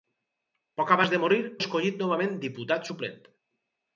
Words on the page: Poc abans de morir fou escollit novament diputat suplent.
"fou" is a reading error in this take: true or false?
true